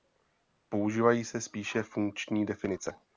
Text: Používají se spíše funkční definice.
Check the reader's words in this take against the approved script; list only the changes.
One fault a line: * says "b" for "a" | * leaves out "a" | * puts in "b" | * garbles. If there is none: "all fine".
all fine